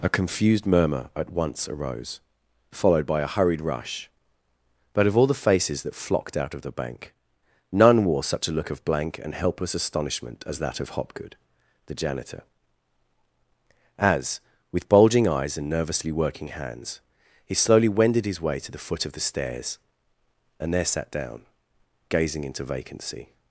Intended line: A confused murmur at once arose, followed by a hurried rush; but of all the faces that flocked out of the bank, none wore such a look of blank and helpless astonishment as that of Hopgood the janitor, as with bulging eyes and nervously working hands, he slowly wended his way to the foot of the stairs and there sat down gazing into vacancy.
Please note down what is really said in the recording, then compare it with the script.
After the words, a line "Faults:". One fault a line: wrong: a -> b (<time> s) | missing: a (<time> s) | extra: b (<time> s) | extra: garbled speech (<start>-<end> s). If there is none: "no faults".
A confused murmur at once arose, followed by a hurried rush; but of all the faces that flocked out of the bank, none wore such a look of blank and helpless astonishment as that of Hopgood the janitor, as with bulging eyes and nervously working hands, he slowly wended his way to the foot of the stairs and there sat down gazing into vacancy.
Faults:
no faults